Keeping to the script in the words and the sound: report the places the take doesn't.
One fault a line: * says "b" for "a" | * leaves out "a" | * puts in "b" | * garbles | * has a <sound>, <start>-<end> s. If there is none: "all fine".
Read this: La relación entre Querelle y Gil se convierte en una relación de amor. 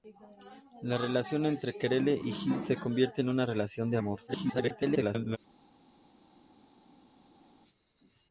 * garbles